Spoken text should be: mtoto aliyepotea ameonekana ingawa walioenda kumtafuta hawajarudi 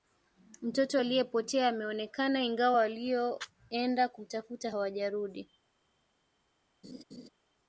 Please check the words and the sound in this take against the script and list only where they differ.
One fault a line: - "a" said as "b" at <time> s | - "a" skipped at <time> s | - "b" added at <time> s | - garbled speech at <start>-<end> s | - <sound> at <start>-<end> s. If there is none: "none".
- laugh at 6.8-7.3 s